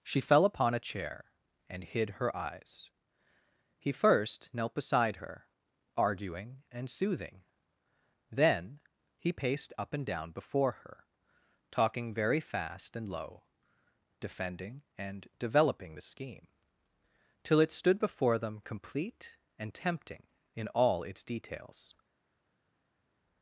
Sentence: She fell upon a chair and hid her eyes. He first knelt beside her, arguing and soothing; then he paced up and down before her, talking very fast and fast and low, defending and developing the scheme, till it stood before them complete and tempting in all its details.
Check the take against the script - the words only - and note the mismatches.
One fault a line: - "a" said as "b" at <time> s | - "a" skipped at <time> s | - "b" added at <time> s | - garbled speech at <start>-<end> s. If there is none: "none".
- "fast and" skipped at 13.1 s